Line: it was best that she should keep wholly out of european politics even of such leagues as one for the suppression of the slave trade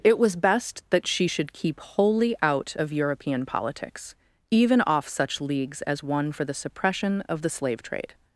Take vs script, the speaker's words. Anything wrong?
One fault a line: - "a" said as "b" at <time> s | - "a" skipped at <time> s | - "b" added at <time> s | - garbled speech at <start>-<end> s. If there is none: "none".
- "of" said as "off" at 4.8 s